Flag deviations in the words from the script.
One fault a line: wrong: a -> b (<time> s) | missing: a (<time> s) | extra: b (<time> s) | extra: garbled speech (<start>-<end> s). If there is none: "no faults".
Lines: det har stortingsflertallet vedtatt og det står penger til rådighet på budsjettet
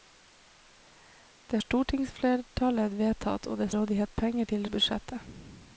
missing: har (1.6 s)
wrong: står -> rådighet (3.8 s)
missing: rådighet på (4.7 s)